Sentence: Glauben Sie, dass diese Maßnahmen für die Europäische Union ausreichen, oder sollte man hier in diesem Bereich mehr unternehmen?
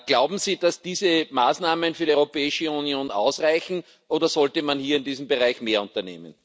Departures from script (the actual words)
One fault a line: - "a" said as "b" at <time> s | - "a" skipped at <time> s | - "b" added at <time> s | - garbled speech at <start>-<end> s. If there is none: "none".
none